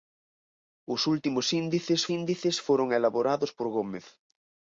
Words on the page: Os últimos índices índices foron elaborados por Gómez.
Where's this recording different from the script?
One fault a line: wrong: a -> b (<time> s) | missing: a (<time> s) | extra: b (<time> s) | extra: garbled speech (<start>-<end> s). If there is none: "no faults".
no faults